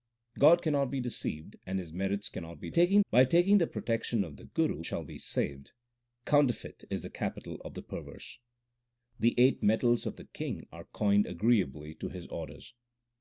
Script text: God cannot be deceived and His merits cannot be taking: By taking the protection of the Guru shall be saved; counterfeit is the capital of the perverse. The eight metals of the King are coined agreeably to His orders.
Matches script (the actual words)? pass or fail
pass